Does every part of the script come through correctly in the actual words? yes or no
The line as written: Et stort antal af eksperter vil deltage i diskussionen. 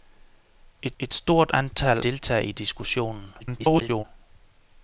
no